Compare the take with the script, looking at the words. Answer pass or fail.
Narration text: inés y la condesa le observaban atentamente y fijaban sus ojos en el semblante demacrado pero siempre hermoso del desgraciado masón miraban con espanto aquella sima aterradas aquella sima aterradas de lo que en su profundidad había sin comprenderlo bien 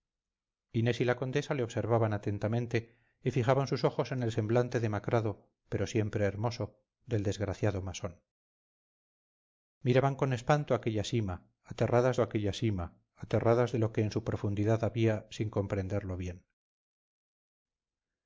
pass